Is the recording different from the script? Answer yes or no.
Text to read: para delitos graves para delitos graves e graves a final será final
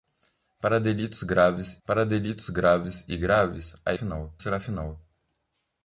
no